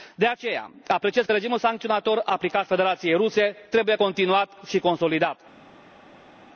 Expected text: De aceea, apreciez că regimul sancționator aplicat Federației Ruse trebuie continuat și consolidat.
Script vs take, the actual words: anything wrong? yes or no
no